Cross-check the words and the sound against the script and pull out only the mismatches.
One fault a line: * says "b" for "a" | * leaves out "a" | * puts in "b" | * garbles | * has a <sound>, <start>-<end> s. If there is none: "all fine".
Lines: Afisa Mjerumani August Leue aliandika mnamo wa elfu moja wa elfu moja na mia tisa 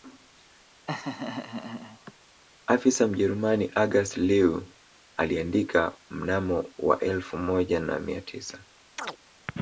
* has a laugh, 0.9-2.1 s
* leaves out "wa elfu moja"
* has a chirp, 9.0-9.2 s